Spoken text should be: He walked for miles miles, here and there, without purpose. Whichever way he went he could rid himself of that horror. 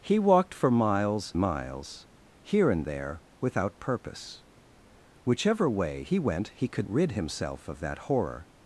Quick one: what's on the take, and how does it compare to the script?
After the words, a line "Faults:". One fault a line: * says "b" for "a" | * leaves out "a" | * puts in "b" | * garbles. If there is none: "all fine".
He walked for miles miles, here and there, without purpose. Whichever way he went he could rid himself of that horror.
Faults:
all fine